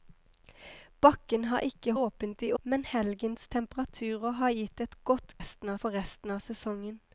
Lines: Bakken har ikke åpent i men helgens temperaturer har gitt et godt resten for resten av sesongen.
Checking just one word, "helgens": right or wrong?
right